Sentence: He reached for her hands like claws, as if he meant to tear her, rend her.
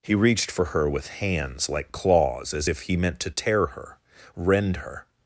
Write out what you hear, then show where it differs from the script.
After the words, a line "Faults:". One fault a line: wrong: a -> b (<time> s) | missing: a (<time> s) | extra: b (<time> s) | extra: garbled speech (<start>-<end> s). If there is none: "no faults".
He reached for her with hands like claws, as if he meant to tear her, rend her.
Faults:
extra: with (0.9 s)